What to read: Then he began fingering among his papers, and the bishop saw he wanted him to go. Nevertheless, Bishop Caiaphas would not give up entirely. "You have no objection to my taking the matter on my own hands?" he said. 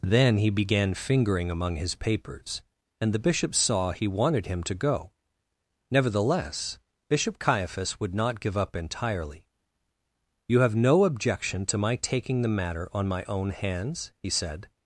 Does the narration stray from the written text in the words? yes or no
no